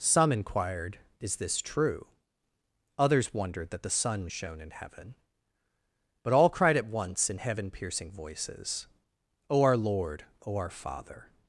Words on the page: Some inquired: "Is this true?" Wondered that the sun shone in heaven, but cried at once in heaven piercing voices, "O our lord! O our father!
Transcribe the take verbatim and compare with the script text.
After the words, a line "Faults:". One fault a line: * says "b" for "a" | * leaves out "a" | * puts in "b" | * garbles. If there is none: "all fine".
Some inquired: "Is this true?" Others wondered that the sun shone in heaven, but all cried at once in heaven piercing voices, "O our lord! O our father!
Faults:
* puts in "Others"
* puts in "all"